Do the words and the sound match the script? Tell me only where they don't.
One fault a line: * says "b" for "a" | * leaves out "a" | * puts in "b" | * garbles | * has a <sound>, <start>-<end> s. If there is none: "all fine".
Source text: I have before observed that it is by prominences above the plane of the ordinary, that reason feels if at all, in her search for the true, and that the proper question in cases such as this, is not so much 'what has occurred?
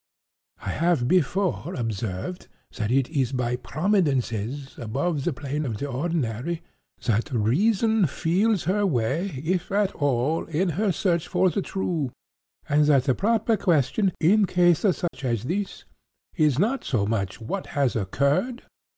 * puts in "her way"
* has a dropout, 15.1-15.1 s